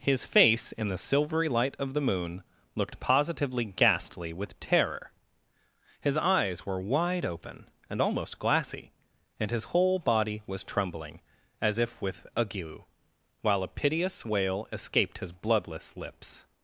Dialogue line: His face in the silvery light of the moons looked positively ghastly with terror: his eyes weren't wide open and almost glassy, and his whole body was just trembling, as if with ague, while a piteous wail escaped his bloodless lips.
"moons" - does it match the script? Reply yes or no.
no